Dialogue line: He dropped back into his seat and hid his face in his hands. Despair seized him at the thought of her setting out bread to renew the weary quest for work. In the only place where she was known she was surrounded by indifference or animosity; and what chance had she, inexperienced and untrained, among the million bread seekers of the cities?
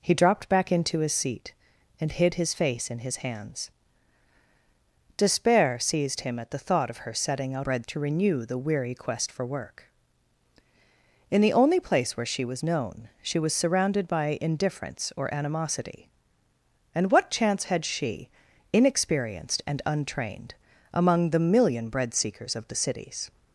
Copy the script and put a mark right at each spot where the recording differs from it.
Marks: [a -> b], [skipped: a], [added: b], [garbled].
He dropped back into his seat and hid his face in his hands. Despair seized him at the thought of her setting out bread to renew the weary quest for work. In the only place where she was known she was surrounded by indifference or animosity; and what chance had she, inexperienced and untrained, among the million bread seekers of the cities?